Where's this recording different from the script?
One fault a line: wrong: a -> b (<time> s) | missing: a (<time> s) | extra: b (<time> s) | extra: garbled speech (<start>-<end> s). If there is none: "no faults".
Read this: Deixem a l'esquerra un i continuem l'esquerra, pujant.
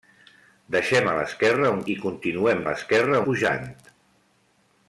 no faults